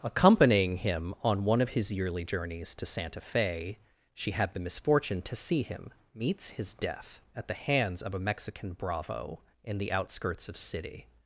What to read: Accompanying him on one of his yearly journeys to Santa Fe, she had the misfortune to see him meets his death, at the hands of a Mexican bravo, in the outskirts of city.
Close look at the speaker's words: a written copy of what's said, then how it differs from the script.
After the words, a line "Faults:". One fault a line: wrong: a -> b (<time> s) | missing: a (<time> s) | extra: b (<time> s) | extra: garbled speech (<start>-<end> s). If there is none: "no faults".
Accompanying him on one of his yearly journeys to Santa Fe, she had the misfortune to see him meets his death, at the hands of a Mexican bravo, in the outskirts of city.
Faults:
no faults